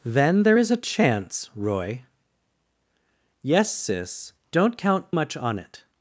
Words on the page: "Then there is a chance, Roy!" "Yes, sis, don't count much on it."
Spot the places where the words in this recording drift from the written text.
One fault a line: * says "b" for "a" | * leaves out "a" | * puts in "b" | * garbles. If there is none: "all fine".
all fine